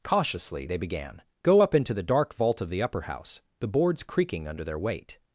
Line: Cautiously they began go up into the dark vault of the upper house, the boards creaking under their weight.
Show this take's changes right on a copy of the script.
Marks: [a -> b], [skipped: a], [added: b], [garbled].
Cautiously they began go up into the dark vault of the upper house, the boards creaking under their weight.